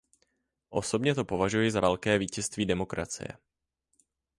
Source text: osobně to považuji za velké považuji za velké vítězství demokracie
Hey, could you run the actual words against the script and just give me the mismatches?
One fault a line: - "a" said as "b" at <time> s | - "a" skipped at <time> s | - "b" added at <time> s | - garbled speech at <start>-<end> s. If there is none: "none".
- "považuji za velké" skipped at 2.2 s